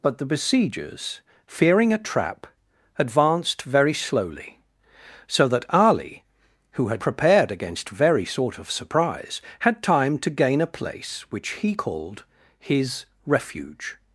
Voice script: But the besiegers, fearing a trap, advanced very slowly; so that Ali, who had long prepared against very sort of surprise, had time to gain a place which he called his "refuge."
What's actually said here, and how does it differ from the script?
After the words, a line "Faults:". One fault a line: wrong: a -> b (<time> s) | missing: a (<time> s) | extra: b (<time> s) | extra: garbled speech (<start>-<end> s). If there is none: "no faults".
But the besiegers, fearing a trap, advanced very slowly; so that Ali, who had prepared against very sort of surprise, had time to gain a place which he called his "refuge."
Faults:
missing: long (7.0 s)